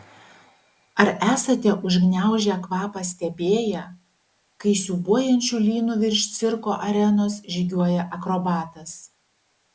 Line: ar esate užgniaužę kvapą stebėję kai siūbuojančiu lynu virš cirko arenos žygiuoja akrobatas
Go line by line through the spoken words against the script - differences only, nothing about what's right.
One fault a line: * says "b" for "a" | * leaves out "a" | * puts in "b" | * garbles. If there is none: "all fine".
all fine